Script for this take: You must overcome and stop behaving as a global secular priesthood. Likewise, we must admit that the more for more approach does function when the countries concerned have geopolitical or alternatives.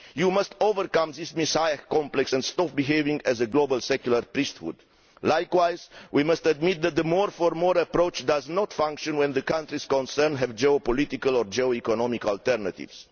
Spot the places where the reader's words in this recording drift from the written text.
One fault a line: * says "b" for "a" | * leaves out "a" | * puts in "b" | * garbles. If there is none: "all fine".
* puts in "this Messiah complex"
* puts in "not"
* puts in "geo economic"